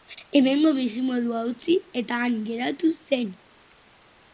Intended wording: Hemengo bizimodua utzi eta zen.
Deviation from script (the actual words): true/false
true